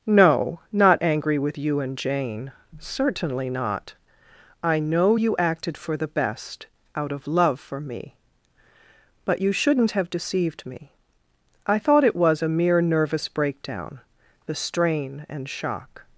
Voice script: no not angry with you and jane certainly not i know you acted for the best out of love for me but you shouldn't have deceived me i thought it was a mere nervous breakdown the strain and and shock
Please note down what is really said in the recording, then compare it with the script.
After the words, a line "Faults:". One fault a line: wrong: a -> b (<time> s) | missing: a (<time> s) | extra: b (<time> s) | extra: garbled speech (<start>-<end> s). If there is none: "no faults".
no not angry with you and jane certainly not i know you acted for the best out of love for me but you shouldn't have deceived me i thought it was a mere nervous breakdown the strain and shock
Faults:
missing: and (15.5 s)